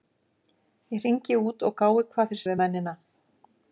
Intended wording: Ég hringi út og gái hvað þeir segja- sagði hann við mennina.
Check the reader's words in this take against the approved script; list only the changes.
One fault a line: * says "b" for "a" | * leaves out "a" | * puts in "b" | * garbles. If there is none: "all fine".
* leaves out "segja sagði hann"